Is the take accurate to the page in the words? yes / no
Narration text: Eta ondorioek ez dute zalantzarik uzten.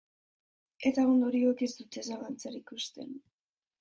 yes